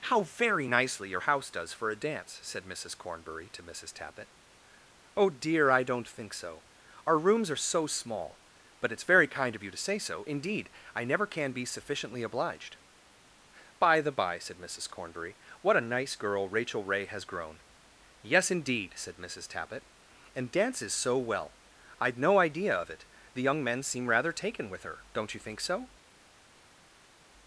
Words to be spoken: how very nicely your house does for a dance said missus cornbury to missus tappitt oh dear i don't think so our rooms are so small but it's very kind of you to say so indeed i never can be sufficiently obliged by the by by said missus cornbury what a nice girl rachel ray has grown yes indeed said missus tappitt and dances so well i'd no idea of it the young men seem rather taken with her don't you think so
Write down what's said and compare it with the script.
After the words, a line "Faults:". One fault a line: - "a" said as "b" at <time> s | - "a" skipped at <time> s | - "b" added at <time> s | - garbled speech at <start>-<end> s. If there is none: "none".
how very nicely your house does for a dance said missus cornbury to missus tappitt oh dear i don't think so our rooms are so small but it's very kind of you to say so indeed i never can be sufficiently obliged by the by said missus cornbury what a nice girl rachel ray has grown yes indeed said missus tappitt and dances so well i'd no idea of it the young men seem rather taken with her don't you think so
Faults:
- "by" skipped at 14.4 s